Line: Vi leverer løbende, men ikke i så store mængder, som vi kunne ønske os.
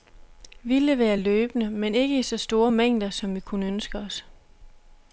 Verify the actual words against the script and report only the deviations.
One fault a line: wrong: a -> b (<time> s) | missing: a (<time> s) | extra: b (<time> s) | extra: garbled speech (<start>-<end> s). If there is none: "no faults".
no faults